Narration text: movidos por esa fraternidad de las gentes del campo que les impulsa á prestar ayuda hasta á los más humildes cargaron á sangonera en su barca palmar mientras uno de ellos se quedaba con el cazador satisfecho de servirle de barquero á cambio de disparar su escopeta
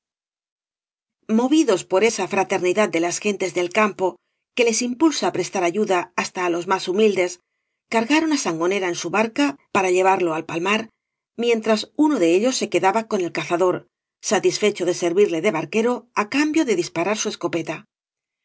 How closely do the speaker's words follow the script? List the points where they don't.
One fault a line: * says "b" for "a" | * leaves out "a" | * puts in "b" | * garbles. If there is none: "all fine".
* puts in "para llevarlo al"